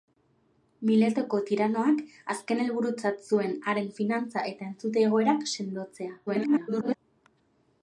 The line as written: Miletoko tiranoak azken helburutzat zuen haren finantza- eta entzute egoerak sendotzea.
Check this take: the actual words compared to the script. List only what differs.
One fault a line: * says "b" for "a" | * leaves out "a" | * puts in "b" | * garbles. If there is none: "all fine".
* garbles